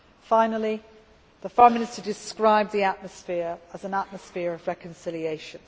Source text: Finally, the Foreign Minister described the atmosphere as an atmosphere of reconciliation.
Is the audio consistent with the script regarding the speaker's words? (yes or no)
yes